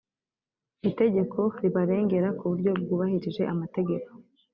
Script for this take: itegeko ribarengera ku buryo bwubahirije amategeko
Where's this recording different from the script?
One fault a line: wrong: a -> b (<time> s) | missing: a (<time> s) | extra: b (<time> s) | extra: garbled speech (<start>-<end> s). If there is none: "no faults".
no faults